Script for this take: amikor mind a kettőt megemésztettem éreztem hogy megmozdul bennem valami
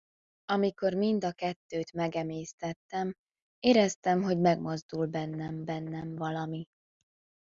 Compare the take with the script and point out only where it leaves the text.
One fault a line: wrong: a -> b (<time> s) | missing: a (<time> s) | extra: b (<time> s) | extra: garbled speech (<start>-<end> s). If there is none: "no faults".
extra: bennem (5.6 s)